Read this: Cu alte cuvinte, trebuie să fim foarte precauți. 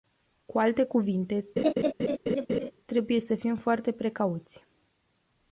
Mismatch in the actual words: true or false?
false